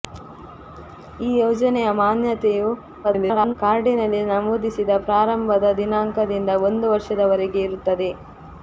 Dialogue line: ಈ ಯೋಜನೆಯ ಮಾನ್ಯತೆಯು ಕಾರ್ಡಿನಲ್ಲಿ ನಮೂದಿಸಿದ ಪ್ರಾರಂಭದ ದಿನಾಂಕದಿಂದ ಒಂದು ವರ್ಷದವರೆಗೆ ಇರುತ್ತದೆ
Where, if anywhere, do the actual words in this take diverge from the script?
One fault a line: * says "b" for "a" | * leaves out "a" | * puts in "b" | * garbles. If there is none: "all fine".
* garbles